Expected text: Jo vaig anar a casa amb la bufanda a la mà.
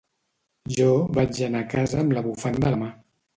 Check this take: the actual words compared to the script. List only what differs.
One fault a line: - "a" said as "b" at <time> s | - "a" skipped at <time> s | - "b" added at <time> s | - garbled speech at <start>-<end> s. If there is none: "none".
none